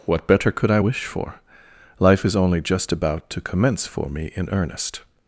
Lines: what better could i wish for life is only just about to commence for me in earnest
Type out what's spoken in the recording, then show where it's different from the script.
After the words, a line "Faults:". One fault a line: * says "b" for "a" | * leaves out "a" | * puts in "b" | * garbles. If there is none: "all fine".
what better could i wish for life is only just about to commence for me in earnest
Faults:
all fine